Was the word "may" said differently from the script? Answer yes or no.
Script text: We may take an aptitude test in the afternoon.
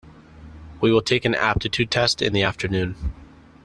yes